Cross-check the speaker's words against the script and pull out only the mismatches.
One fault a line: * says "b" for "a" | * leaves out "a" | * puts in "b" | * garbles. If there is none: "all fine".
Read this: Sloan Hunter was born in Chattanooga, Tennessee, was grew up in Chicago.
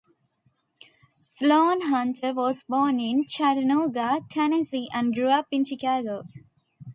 * says "and" for "was"